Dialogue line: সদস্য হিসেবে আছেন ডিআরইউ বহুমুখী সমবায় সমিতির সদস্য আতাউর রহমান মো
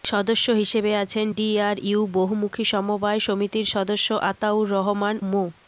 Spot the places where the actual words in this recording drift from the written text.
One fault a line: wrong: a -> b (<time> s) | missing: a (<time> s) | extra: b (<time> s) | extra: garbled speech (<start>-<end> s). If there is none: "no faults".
no faults